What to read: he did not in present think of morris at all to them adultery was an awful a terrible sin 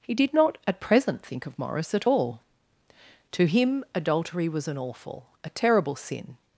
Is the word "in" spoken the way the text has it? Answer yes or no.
no